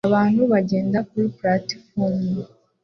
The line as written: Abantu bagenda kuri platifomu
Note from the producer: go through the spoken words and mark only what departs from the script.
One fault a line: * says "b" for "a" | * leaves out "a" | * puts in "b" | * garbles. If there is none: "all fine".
all fine